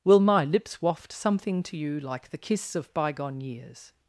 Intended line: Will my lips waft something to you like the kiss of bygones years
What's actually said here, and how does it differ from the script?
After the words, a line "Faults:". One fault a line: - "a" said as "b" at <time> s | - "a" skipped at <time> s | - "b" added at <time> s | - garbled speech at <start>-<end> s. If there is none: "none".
Will my lips waft something to you like the kiss of bygone years
Faults:
- "bygones" said as "bygone" at 2.9 s